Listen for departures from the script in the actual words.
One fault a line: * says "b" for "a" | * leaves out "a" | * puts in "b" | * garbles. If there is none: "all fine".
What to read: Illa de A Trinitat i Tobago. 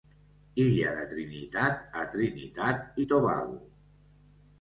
* puts in "Trinitat"